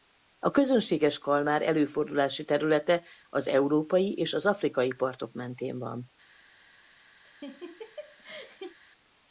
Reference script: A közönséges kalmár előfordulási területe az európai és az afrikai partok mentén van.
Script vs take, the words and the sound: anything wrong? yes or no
yes